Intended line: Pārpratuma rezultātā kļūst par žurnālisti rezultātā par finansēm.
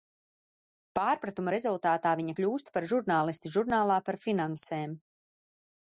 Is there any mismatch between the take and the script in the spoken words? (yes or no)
yes